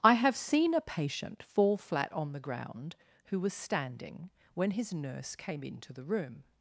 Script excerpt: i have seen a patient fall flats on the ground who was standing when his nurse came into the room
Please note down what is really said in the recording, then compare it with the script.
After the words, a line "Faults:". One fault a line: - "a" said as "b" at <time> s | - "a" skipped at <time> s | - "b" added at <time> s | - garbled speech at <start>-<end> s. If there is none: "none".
i have seen a patient fall flat on the ground who was standing when his nurse came into the room
Faults:
- "flats" said as "flat" at 1.8 s